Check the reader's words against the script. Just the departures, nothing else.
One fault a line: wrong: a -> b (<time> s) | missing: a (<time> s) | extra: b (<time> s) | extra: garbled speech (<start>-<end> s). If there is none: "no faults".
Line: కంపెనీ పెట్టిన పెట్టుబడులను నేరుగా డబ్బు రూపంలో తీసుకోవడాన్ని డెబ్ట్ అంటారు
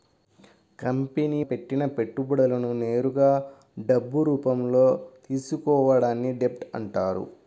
no faults